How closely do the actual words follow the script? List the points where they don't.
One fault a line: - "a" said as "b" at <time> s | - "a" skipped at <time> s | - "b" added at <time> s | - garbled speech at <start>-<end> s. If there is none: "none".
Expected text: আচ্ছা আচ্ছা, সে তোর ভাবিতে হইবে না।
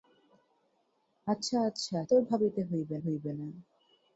- "সে" skipped at 2.0 s
- "হইবে" added at 3.0 s